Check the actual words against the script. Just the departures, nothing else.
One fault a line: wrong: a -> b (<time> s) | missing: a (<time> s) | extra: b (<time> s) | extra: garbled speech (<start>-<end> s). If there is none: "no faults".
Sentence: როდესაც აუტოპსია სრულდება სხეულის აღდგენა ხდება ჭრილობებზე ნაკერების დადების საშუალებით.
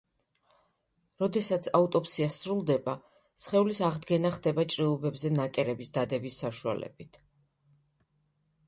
no faults